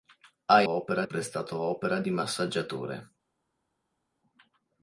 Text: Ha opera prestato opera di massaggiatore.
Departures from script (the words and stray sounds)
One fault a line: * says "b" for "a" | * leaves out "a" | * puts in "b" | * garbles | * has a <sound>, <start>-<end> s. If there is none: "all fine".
all fine